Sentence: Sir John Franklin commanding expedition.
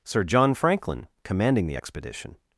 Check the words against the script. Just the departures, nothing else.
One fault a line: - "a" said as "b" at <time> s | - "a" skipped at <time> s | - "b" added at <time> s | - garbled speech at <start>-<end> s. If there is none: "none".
- "the" added at 1.7 s